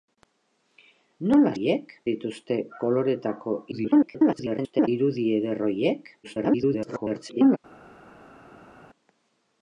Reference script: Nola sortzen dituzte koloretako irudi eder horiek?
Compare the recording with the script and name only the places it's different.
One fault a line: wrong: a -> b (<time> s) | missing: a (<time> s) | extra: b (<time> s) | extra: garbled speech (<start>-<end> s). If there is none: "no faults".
wrong: sortzen -> horiek (1.5 s)
extra: garbled speech (3.7-4.9 s)
extra: garbled speech (6.2-7.6 s)